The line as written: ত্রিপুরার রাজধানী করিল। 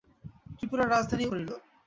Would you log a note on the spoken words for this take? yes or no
no